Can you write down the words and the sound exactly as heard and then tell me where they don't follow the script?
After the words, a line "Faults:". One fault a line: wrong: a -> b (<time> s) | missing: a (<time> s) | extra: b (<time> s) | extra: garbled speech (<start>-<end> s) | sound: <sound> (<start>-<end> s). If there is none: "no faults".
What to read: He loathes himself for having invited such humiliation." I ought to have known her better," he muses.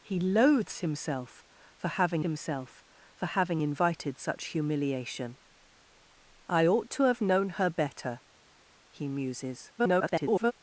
He loathes himself for having himself for having invited such humiliation." I ought to have known her better," he muses. [garbled]
Faults:
extra: himself for having (2.2 s)
extra: garbled speech (9.8-10.5 s)